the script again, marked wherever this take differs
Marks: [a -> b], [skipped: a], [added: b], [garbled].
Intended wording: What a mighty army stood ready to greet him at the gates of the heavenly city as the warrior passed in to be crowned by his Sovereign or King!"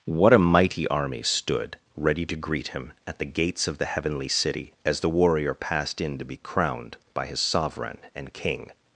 What a mighty army stood ready to greet him at the gates of the heavenly city as the warrior passed in to be crowned by his Sovereign [or -> and] King!"